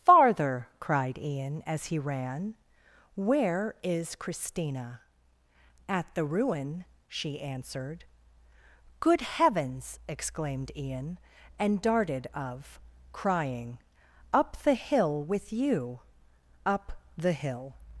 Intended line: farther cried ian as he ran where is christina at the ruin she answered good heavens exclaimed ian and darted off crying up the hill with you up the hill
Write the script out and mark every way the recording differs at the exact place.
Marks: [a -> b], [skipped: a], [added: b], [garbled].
farther cried ian as he ran where is christina at the ruin she answered good heavens exclaimed ian and darted [off -> of] crying up the hill with you up the hill